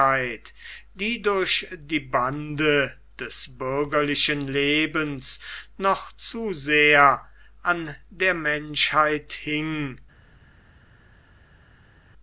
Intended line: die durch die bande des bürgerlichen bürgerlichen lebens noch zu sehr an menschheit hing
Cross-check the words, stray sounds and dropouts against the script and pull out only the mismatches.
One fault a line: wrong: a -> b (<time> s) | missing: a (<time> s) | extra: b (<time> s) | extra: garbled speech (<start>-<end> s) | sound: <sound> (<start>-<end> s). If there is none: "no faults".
missing: bürgerlichen (4.4 s)
extra: der (8.1 s)